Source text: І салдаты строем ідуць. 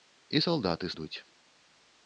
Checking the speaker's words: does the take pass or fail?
fail